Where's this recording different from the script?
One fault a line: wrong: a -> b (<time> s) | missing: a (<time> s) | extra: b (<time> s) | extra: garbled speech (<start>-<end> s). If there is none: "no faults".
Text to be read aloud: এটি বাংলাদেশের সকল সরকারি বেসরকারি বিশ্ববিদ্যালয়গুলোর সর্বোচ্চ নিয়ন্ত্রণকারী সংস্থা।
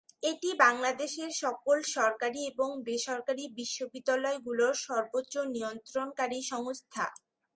extra: এবং (2.5 s)